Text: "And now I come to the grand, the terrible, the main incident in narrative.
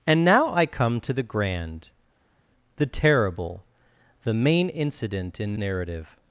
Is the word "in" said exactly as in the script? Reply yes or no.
yes